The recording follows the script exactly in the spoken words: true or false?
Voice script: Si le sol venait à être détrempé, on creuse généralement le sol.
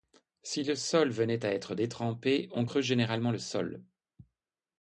true